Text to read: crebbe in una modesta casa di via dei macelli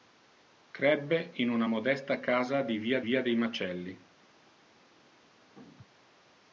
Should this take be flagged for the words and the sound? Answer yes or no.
yes